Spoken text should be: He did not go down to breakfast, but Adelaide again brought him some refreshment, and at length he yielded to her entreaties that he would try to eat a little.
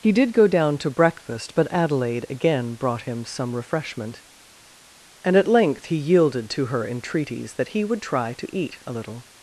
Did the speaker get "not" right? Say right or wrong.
wrong